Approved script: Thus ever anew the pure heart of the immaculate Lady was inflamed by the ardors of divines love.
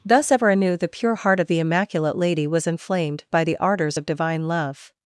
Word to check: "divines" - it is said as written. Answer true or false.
false